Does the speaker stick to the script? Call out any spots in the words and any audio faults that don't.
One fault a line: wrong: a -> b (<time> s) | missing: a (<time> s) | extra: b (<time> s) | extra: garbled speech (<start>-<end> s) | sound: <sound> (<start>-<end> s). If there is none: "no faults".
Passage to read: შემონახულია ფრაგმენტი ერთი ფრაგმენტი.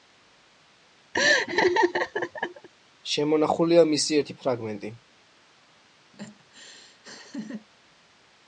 sound: laugh (1.1-2.7 s)
wrong: ფრაგმენტი -> მისი (3.9 s)
sound: laugh (6.1-7.7 s)